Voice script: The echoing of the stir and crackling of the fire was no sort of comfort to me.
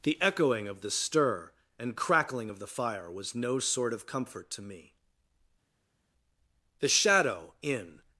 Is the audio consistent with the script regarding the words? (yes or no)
no